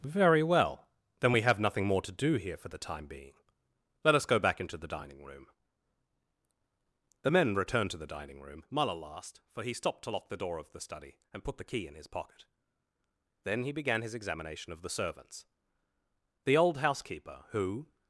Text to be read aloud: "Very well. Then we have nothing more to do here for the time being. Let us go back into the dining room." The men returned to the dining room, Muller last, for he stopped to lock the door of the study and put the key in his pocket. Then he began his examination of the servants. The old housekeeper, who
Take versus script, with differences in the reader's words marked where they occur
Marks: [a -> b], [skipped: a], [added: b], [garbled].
"Very well. Then we have nothing more to do here for the time being. Let us go back into the dining room." The men returned to the dining room, Muller last, for he stopped to lock the door of the study and put the key in his pocket. Then he began his examination of the servants. The old housekeeper, who